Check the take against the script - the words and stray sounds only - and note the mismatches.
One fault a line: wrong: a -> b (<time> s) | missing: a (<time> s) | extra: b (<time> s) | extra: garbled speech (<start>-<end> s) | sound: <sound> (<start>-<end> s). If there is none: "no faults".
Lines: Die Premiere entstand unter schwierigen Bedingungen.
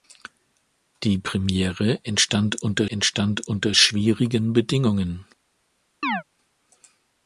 extra: entstand unter (2.9 s)
sound: chirp (6.0-6.2 s)